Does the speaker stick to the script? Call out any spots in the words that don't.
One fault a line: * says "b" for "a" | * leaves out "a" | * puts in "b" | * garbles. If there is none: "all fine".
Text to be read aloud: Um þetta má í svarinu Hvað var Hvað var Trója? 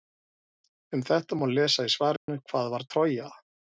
* puts in "lesa"
* leaves out "Hvað var"